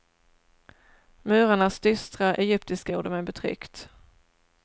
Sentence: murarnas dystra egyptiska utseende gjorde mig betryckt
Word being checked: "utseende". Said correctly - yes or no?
no